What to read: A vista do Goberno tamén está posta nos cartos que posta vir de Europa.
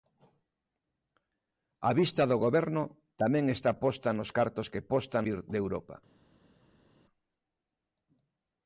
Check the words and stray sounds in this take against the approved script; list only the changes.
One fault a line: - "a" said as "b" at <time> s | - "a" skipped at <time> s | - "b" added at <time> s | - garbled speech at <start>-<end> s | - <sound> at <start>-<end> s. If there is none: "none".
none